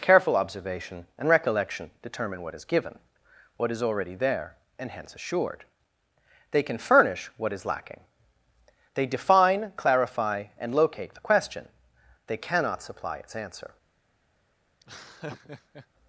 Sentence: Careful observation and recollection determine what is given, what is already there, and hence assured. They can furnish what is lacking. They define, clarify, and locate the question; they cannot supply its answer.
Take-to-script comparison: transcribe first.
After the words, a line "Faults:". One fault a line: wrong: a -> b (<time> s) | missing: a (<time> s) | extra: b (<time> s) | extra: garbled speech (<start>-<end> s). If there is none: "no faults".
Careful observation and recollection determine what is given, what is already there, and hence assured. They can furnish what is lacking. They define, clarify, and locate the question; they cannot supply its answer.
Faults:
no faults